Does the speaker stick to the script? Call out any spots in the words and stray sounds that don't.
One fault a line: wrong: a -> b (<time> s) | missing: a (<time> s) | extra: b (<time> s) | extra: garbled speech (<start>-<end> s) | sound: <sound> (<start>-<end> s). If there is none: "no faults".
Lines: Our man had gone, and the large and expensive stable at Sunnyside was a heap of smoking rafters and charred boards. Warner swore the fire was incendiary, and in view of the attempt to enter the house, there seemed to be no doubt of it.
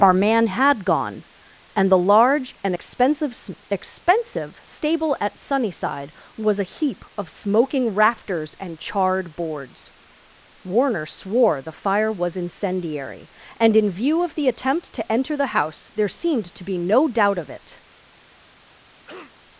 extra: expensive (3.7 s)
sound: cough (19.0-19.3 s)